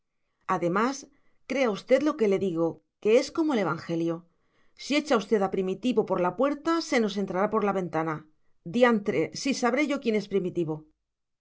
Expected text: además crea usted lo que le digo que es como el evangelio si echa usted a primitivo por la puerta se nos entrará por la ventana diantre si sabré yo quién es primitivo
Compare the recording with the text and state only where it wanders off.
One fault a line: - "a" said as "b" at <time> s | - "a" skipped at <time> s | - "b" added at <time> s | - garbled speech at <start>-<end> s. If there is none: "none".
none